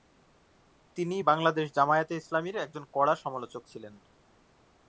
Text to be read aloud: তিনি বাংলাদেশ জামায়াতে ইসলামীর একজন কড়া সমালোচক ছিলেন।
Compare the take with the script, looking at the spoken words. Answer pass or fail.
pass